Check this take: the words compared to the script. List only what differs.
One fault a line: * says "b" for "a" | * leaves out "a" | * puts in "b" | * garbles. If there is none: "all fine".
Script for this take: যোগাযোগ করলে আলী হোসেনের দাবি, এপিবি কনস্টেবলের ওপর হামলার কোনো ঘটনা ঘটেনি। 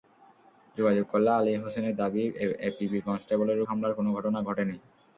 * leaves out "ওপর"